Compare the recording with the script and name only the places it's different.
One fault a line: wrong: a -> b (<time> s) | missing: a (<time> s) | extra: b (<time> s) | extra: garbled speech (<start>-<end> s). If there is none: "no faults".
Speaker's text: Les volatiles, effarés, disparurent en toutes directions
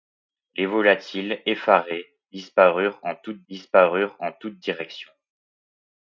extra: disparurent en toutes (3.5 s)